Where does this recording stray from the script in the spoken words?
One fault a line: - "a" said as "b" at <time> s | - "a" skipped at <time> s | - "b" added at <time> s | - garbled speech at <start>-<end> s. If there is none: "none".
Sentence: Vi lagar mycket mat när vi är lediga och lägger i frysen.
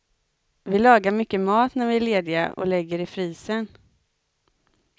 none